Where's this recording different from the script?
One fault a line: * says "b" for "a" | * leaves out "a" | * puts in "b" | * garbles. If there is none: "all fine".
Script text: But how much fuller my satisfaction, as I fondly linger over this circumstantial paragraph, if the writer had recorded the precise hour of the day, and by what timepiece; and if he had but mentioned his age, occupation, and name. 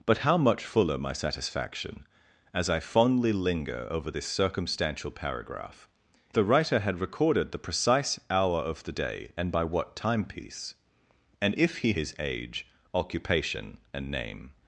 * leaves out "if"
* leaves out "had but mentioned"